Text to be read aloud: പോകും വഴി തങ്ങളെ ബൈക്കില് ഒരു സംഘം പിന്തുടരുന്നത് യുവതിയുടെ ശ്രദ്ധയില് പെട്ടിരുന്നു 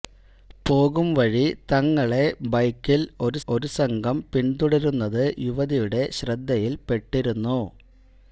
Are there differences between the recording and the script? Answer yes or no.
yes